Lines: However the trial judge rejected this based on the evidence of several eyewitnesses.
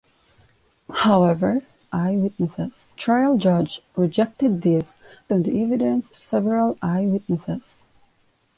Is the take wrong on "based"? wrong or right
wrong